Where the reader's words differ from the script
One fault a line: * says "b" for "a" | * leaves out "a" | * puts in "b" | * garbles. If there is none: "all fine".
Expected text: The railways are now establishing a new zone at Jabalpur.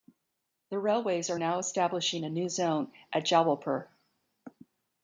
all fine